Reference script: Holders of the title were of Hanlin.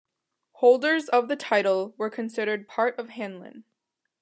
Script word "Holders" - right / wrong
right